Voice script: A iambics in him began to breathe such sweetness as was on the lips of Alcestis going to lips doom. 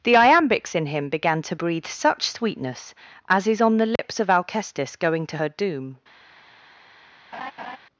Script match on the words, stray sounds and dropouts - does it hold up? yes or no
no